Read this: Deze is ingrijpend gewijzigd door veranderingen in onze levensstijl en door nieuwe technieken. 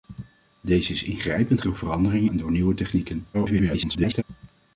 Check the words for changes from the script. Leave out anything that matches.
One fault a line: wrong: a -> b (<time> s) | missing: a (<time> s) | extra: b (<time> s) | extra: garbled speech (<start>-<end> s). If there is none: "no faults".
missing: gewijzigd (1.6 s)
missing: in onze levensstijl (2.3 s)
extra: garbled speech (3.3-4.2 s)